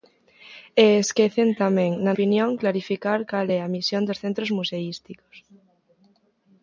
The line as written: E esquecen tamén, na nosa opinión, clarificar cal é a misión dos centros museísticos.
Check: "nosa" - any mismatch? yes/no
yes